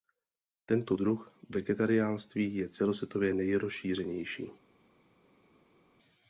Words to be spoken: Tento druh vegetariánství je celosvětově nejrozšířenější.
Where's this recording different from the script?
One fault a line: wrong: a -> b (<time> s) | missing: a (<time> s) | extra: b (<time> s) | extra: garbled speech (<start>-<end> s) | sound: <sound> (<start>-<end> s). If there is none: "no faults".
no faults